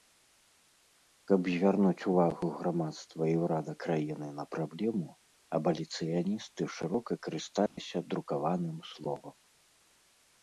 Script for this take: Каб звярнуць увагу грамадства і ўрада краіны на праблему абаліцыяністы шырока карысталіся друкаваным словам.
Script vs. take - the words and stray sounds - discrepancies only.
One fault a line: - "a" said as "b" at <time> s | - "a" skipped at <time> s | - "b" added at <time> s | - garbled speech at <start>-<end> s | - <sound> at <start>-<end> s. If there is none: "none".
- dropout at 7.7-7.8 s